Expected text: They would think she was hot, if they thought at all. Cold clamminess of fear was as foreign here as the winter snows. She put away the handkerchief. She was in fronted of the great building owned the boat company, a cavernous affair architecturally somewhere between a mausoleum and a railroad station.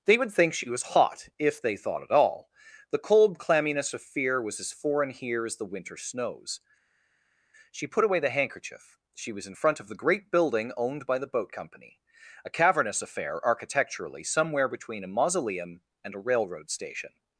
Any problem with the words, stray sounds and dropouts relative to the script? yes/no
yes